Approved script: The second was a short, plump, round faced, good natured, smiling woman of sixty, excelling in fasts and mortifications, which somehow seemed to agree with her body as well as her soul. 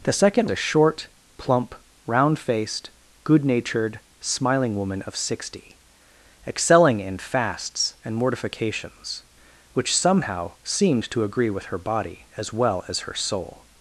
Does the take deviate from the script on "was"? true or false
true